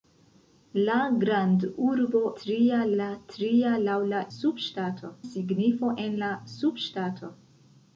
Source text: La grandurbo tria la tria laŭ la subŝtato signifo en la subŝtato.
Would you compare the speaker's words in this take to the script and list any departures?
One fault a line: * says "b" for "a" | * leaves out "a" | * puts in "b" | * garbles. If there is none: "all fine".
all fine